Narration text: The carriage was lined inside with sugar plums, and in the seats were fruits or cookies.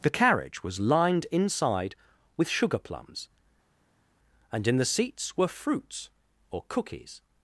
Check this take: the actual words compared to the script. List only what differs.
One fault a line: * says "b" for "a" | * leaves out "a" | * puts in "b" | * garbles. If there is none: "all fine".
all fine